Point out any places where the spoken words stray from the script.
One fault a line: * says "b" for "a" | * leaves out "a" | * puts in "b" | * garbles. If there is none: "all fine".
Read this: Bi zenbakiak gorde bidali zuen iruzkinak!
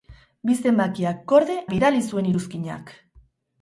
all fine